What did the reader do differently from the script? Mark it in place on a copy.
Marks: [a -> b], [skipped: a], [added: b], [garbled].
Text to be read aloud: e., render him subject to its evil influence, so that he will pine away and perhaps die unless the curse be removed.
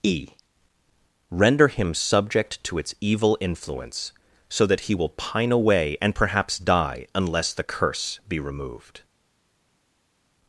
e., render him subject to its evil influence, so that he will pine away and perhaps die unless the curse be removed.